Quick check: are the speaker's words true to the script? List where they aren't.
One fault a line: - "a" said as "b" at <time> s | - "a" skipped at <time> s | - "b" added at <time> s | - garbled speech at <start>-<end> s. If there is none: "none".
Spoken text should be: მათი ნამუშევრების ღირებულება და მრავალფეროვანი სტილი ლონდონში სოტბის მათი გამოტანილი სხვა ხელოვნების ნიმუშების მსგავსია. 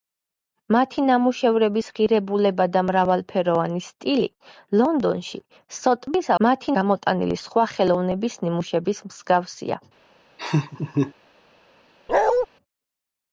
none